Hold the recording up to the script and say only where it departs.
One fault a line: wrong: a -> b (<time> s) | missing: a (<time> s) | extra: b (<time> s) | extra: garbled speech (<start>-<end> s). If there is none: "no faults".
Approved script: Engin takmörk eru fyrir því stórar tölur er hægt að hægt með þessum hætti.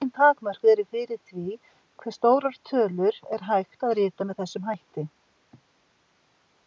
extra: hve (2.0 s)
wrong: hægt -> rita (4.0 s)